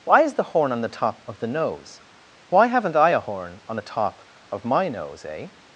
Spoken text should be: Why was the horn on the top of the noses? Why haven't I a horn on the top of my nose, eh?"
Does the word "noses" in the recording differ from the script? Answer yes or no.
yes